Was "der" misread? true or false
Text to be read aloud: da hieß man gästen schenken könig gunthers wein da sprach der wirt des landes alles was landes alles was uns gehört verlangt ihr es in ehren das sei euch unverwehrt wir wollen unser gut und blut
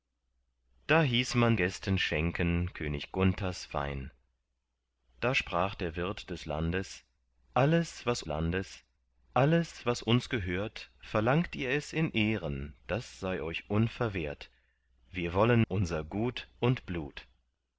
false